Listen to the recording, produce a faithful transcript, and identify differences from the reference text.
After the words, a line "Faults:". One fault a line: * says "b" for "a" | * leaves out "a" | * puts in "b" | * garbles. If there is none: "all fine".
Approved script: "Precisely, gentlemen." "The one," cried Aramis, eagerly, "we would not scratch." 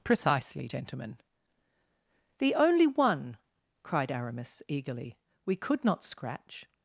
"Precisely, gentlemen." "The only one," cried Aramis, eagerly, "we could not scratch."
Faults:
* puts in "only"
* says "could" for "would"